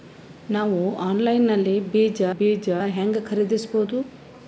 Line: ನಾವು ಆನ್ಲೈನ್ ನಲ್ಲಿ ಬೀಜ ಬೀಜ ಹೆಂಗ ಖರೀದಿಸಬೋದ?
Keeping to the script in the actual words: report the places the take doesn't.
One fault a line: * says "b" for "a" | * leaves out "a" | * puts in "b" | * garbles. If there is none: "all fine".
all fine